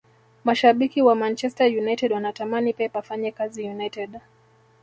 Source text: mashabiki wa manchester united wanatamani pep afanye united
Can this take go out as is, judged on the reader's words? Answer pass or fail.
fail